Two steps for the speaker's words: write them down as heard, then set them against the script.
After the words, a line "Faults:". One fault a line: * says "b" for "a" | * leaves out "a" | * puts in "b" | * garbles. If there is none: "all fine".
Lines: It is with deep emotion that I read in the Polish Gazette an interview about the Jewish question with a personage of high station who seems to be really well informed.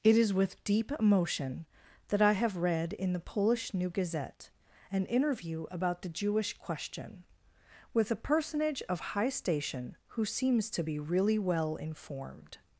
It is with deep emotion that I have read in the Polish New Gazette an interview about the Jewish question with a personage of high station who seems to be really well informed.
Faults:
* puts in "have"
* puts in "New"